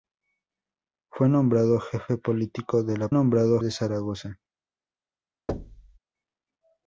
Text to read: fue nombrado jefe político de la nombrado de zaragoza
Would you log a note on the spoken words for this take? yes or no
no